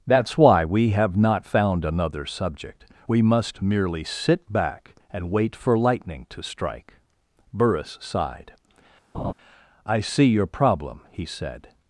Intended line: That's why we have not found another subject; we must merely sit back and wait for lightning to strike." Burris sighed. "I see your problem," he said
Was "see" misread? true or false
false